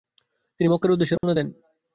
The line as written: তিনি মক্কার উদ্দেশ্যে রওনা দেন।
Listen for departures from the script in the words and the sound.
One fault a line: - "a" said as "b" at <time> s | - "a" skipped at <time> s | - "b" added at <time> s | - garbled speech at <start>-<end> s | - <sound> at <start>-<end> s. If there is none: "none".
- dropout at 1.2-1.2 s